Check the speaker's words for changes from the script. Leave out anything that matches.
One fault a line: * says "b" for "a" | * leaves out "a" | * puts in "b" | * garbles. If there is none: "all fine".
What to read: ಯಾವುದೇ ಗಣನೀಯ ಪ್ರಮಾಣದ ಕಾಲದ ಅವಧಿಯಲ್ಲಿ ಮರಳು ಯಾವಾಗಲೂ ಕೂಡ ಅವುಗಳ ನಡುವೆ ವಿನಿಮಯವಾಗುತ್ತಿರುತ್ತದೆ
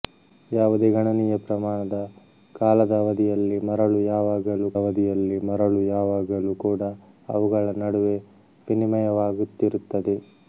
* puts in "ಅವಧಿಯಲ್ಲಿ ಮರಳು ಯಾವಾಗಲೂ"